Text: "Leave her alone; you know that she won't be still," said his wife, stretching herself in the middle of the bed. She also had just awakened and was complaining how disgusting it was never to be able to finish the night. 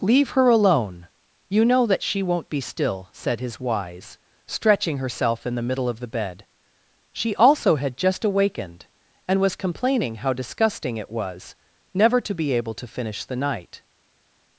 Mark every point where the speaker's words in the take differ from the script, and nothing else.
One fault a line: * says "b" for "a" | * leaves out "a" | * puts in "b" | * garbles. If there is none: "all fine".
* says "wise" for "wife"